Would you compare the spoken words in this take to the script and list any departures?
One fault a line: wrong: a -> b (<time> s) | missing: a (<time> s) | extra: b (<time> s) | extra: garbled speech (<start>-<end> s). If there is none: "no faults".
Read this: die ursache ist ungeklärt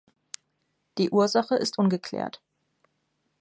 no faults